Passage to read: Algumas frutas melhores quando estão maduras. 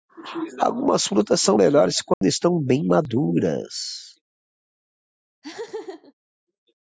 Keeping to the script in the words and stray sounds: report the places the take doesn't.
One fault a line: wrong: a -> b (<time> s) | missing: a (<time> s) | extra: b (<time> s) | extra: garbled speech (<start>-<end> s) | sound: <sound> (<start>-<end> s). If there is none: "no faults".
extra: são (1.4 s)
sound: dropout (2.1-2.2 s)
extra: bem (2.6 s)
sound: laugh (5.4-6.1 s)